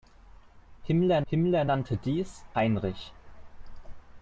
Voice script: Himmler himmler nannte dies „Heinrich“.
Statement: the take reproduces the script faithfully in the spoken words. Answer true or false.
true